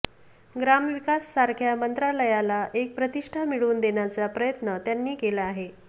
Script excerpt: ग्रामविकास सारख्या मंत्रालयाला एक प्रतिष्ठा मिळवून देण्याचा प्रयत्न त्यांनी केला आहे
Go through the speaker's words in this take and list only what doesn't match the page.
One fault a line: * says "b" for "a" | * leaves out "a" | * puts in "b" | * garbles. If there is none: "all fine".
all fine